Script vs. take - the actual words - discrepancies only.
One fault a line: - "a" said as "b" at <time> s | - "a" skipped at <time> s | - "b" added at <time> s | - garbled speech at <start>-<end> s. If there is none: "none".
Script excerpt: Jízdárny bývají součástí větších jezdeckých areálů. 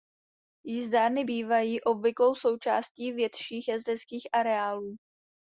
- "obvyklou" added at 1.8 s